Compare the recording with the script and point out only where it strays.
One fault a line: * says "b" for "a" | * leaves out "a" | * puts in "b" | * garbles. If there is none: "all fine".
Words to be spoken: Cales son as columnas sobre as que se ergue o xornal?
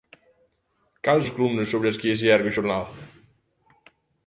* leaves out "son"